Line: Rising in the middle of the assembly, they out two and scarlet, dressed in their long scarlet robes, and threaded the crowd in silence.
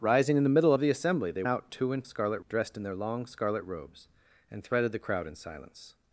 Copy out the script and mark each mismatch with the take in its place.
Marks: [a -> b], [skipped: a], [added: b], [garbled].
Rising in the middle of the assembly, they out two and scarlet, dressed in their long scarlet robes, and threaded the crowd in silence.